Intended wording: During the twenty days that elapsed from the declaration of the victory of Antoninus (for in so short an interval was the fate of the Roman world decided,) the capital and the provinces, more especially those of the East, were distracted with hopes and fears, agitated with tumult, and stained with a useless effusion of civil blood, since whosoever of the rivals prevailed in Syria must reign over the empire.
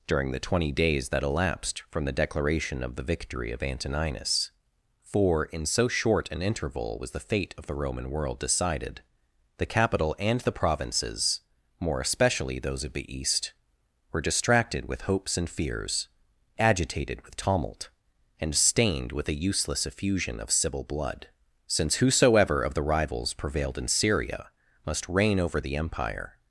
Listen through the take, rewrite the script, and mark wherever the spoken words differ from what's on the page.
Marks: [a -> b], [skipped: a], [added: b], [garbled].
During the twenty days that elapsed from the declaration of the victory of Antoninus (for in so short an interval was the fate of the Roman world decided,) the capital and the provinces, more especially those of the East, were distracted with hopes and fears, agitated with tumult, and stained with a useless effusion of civil blood, since whosoever of the rivals prevailed in Syria must reign over the empire.